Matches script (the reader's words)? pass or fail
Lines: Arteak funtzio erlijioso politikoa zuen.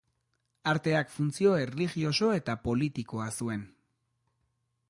fail